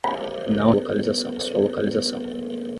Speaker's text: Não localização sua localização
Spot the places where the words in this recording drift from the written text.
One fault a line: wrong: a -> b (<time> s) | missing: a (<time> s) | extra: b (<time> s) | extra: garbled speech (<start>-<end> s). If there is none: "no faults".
no faults